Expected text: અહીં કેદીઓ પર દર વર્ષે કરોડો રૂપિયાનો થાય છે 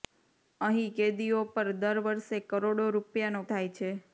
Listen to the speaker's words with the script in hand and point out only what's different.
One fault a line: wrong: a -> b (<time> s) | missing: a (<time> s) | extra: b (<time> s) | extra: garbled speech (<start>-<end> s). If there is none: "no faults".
no faults